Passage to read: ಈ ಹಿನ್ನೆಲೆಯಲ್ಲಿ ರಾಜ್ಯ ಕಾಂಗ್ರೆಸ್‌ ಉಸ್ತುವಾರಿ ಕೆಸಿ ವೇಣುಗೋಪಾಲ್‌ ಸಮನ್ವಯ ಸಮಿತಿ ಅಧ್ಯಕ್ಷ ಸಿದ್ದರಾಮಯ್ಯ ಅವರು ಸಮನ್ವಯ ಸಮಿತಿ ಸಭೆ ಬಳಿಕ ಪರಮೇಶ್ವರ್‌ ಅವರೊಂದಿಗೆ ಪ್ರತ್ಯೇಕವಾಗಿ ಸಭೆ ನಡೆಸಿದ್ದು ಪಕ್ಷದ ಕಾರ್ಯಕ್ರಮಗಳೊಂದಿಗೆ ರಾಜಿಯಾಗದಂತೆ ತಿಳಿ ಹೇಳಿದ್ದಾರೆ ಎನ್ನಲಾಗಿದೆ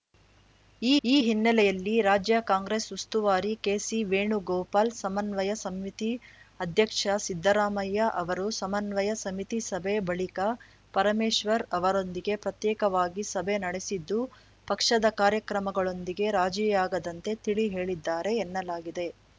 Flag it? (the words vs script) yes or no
yes